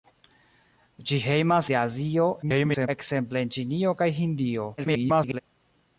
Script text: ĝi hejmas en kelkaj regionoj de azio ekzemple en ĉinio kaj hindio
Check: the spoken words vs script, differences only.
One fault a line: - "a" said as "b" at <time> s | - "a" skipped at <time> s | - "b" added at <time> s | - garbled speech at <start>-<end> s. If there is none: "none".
- "en kelkaj regionoj" skipped at 1.7 s
- garbled speech at 2.4-2.9 s
- garbled speech at 4.8-5.4 s